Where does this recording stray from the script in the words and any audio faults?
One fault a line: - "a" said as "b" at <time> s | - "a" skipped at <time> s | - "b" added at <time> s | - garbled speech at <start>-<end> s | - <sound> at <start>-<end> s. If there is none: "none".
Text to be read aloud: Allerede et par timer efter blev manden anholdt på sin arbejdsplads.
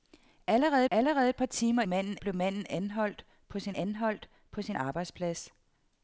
- "allerede" added at 0.9 s
- "efter" said as "manden" at 1.9 s
- "anholdt på sin" added at 3.7 s